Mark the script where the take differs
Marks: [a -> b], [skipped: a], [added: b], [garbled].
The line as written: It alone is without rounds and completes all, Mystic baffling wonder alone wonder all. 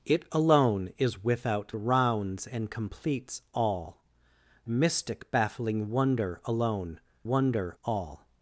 It alone is without rounds and completes all, Mystic baffling wonder alone wonder all.